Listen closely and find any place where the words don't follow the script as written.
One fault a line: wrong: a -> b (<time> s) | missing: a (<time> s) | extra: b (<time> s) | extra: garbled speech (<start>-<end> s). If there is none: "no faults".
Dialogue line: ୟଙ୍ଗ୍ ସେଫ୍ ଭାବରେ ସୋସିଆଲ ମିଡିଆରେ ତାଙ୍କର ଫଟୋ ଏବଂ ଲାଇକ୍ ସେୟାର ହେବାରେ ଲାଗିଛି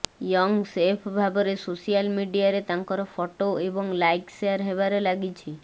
no faults